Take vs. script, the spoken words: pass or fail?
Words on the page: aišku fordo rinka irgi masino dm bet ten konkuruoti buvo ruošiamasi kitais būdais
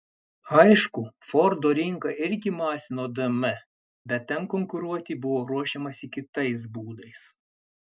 pass